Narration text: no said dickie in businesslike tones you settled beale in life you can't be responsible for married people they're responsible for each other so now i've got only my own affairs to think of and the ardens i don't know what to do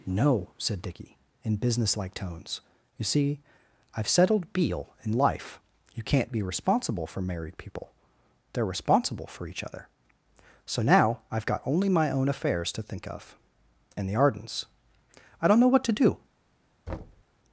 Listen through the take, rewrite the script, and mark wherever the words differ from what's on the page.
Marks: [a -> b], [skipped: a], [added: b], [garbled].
no said dickie in businesslike tones you [added: see i've] settled beale in life you can't be responsible for married people they're responsible for each other so now i've got only my own affairs to think of and the ardens i don't know what to do